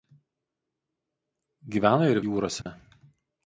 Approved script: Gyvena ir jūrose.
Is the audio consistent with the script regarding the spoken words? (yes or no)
yes